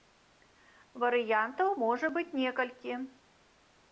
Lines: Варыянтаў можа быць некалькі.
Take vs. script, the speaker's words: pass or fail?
pass